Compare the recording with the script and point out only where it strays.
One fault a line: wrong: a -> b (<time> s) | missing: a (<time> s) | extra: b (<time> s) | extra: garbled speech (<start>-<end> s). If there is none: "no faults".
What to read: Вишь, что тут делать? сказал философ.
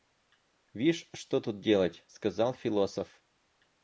no faults